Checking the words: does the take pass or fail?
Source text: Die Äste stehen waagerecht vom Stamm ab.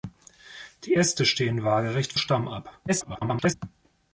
fail